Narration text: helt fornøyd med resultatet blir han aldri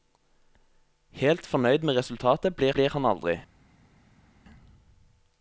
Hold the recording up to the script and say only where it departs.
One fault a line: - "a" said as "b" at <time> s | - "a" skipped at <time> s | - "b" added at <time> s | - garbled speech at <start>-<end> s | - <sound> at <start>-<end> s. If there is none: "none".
- "blir" added at 2.7 s